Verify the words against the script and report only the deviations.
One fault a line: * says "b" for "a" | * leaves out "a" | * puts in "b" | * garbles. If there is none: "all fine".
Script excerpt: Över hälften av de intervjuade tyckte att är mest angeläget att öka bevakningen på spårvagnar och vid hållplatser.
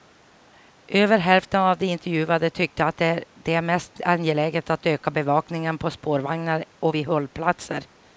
* puts in "det"